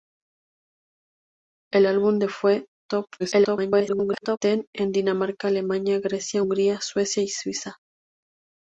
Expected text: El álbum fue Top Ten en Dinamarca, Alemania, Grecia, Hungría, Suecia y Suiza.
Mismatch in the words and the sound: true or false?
true